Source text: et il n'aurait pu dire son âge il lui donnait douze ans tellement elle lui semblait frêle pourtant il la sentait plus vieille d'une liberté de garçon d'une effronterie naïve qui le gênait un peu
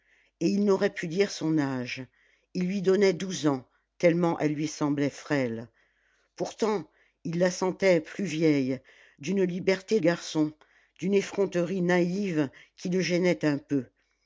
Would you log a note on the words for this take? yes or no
yes